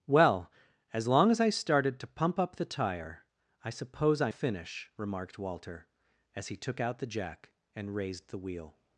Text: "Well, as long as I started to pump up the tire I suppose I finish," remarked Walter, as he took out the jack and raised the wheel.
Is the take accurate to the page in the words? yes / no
yes